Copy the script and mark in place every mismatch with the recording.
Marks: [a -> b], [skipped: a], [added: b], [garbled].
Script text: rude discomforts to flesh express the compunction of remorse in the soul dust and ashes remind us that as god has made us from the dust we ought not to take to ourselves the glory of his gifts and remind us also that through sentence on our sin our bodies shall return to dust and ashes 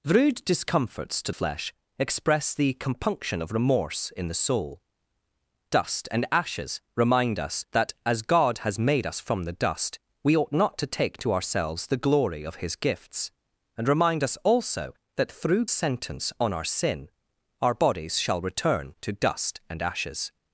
rude discomforts to flesh express the compunction of remorse in the soul dust and ashes remind us that as god has made us from the dust we ought not to take to ourselves the glory of his gifts and remind us also that through sentence on our sin our bodies shall return to dust and ashes